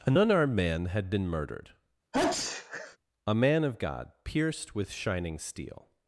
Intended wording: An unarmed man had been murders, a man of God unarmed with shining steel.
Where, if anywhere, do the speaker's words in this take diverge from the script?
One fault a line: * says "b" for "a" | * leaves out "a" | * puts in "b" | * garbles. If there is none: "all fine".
* says "murdered" for "murders"
* says "pierced" for "unarmed"